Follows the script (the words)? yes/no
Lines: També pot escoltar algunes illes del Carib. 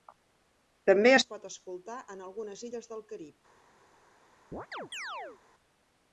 no